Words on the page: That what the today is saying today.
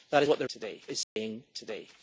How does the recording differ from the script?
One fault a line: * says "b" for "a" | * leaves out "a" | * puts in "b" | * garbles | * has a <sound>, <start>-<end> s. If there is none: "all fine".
* has a dropout, 1.0-1.2 s